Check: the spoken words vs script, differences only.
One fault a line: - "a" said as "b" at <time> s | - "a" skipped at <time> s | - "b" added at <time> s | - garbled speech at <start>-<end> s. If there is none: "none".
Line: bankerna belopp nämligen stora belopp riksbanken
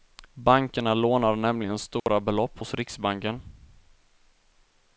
- "belopp" said as "lånar" at 0.9 s
- "hos" added at 2.6 s